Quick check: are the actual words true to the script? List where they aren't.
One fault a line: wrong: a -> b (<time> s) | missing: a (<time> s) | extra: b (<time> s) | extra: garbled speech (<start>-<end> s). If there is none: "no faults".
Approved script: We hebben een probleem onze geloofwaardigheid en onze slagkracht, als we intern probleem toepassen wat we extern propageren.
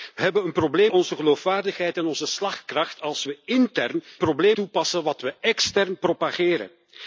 no faults